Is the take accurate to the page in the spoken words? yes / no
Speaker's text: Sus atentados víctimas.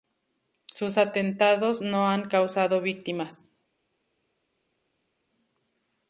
no